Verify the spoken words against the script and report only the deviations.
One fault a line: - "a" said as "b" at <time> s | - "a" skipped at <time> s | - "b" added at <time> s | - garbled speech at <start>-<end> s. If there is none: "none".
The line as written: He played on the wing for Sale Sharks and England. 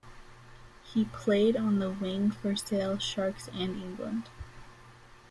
none